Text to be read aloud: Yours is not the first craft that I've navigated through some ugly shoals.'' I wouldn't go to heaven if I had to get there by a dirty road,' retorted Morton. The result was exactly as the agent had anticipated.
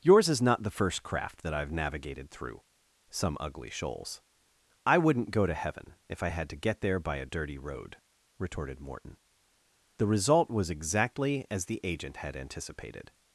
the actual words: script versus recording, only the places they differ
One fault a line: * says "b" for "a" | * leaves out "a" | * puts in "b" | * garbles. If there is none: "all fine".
all fine